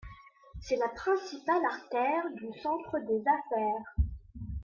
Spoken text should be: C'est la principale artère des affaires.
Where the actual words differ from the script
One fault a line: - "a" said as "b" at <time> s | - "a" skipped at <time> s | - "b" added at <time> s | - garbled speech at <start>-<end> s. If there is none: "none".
- "du centre" added at 2.3 s